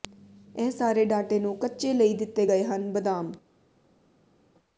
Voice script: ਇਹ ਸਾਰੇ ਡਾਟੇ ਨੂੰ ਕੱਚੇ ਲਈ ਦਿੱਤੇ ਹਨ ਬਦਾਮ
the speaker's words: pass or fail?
fail